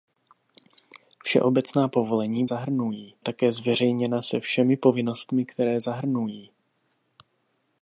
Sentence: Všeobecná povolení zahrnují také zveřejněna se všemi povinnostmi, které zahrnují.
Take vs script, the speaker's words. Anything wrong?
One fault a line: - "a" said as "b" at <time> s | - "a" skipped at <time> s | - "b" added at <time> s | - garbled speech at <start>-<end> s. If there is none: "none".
none